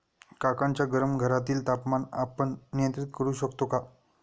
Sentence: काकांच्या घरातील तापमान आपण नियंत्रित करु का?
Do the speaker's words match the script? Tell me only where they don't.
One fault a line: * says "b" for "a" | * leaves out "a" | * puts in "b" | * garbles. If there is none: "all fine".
* puts in "गरम"
* puts in "शकतो"